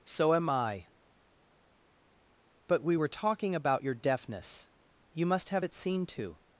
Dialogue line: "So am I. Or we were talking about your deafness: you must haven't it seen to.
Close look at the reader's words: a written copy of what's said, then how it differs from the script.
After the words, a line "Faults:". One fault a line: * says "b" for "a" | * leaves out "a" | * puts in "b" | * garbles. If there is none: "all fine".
"So am I. But we were talking about your deafness: you must have it seen to.
Faults:
* says "But" for "Or"
* says "have" for "haven't"